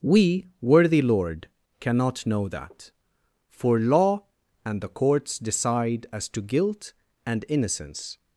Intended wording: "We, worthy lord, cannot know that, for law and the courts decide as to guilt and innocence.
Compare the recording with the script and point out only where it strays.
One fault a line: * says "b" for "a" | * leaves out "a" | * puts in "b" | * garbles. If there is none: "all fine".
all fine